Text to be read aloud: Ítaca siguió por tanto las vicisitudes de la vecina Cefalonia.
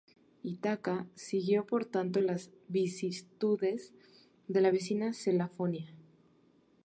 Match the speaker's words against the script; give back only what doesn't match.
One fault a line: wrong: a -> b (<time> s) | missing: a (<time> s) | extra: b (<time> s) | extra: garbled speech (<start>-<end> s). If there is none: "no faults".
no faults